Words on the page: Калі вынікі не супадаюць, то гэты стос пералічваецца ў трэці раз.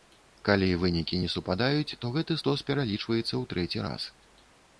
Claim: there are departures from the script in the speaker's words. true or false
false